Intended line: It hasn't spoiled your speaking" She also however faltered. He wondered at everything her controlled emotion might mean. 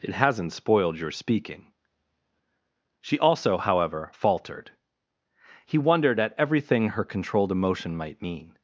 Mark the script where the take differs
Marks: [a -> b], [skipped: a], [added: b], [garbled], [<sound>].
It hasn't spoiled your speaking" She also however faltered. He wondered at everything her controlled emotion might mean.